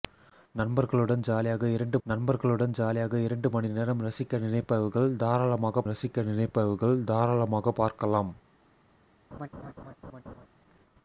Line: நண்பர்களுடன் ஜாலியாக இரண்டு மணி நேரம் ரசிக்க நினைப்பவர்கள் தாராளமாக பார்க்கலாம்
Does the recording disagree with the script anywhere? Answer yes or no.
yes